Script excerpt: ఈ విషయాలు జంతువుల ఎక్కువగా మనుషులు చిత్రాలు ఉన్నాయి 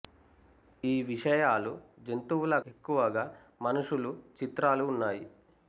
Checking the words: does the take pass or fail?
pass